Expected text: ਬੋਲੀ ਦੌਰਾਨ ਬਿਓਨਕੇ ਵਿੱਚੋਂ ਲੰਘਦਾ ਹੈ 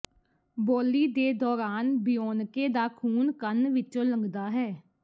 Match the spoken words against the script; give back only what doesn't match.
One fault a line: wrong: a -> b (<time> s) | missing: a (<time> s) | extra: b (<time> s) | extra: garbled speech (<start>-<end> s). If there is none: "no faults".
extra: ਦੇ (1.1 s)
extra: ਦਾ ਖੂਨ ਕੰਨ (2.7 s)